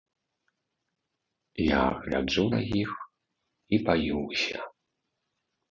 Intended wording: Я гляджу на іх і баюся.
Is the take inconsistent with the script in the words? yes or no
no